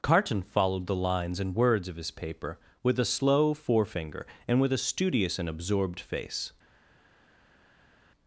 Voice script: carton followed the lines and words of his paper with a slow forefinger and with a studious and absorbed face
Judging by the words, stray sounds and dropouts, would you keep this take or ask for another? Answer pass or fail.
pass